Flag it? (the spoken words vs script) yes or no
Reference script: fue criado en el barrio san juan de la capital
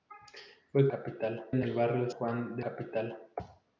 yes